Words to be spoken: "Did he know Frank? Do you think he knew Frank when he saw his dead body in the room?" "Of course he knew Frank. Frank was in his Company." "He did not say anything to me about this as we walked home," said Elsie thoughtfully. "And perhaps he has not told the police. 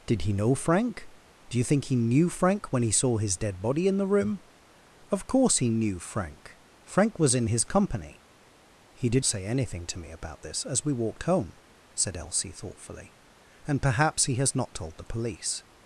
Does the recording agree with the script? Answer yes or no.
no